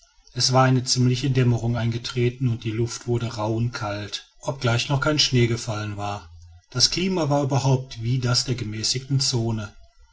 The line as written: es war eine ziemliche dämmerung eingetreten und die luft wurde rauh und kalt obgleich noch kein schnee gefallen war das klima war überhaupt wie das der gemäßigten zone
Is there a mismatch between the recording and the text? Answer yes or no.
no